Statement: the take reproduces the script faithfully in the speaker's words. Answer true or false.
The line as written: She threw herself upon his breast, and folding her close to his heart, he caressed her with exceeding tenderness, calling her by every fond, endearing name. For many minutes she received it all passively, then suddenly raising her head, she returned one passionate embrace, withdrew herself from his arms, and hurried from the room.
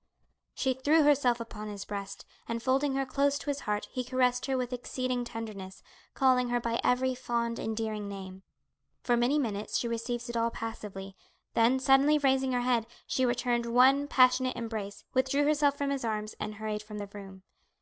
true